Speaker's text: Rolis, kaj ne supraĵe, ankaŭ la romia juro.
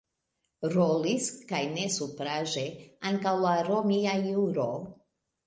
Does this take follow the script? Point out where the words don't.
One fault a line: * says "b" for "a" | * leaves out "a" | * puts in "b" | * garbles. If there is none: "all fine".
all fine